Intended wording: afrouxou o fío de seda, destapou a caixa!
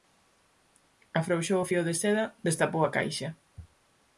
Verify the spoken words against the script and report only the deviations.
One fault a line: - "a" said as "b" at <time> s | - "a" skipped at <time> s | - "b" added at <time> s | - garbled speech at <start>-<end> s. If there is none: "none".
none